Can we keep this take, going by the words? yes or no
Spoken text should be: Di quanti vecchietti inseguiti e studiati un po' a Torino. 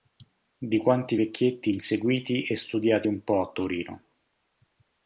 yes